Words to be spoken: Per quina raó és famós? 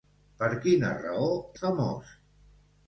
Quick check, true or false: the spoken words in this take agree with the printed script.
false